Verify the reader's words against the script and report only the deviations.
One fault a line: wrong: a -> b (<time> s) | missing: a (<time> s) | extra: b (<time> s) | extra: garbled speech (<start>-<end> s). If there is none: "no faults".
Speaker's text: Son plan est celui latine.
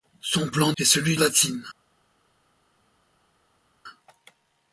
no faults